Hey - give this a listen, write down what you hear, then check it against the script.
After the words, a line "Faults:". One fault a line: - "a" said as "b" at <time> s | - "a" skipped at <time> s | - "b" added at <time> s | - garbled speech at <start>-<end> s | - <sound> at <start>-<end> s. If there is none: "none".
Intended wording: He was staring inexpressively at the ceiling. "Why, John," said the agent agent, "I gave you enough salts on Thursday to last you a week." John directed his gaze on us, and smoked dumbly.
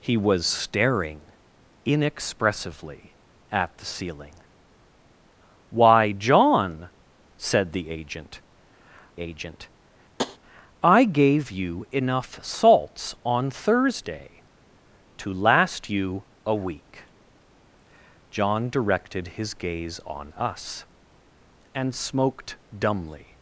He was staring inexpressively at the ceiling. "Why, John," said the agent agent, "I gave you enough salts on Thursday to last you a week." John directed his gaze on us, and smoked dumbly.
Faults:
- tap at 10.2-10.4 s